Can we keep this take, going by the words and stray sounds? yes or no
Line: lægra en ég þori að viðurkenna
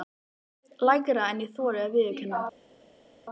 yes